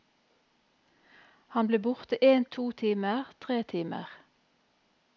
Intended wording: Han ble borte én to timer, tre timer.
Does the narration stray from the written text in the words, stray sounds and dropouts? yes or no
no